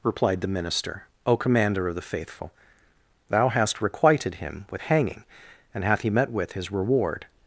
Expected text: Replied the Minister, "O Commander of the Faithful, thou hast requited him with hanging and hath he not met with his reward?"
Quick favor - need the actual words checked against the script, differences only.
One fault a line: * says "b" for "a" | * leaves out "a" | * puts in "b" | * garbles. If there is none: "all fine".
* leaves out "not"